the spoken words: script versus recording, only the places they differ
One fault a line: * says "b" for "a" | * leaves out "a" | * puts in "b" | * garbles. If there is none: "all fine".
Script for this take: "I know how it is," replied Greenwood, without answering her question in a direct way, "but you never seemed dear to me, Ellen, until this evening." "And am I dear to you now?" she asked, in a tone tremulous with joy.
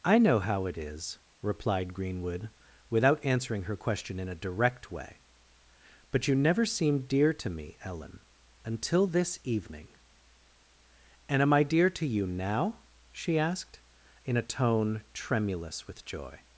all fine